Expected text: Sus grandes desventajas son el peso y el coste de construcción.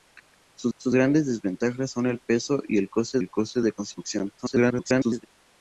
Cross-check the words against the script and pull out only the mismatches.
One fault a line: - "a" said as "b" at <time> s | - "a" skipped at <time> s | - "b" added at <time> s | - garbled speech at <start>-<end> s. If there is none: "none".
- "sus" added at 0.8 s
- "el coste" added at 3.2 s
- garbled speech at 4.4-5.3 s